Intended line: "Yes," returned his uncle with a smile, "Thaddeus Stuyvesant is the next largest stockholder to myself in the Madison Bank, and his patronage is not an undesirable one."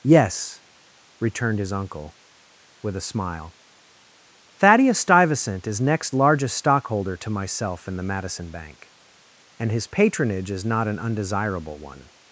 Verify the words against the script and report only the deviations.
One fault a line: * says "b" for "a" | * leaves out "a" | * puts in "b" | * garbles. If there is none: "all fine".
* leaves out "the"